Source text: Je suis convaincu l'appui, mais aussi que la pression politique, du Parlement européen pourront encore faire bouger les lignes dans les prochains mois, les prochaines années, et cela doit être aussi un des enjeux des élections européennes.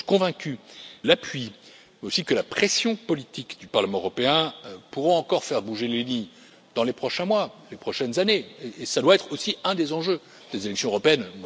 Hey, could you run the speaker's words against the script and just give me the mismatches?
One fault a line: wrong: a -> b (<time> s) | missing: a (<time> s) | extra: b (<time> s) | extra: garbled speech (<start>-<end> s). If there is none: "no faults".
no faults